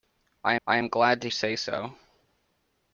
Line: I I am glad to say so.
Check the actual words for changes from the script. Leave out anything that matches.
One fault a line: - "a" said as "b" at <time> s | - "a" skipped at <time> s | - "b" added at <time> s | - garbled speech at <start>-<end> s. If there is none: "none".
none